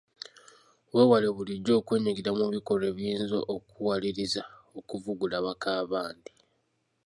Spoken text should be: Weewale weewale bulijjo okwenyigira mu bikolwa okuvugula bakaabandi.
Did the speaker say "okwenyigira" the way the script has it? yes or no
yes